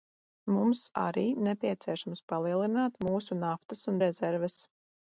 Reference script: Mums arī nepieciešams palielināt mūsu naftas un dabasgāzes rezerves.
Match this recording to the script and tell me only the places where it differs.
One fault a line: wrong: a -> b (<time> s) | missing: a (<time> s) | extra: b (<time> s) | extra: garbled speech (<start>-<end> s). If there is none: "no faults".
missing: dabasgāzes (4.0 s)